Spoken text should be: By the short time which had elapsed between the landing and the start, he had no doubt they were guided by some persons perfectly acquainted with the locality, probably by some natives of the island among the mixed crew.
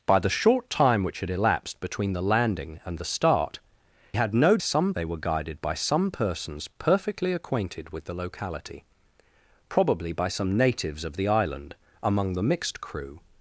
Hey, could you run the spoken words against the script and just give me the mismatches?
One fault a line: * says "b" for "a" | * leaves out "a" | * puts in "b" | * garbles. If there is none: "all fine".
* leaves out "he"
* says "some" for "doubt"